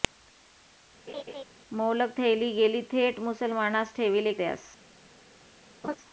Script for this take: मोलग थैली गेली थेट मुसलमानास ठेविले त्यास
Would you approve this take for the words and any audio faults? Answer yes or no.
no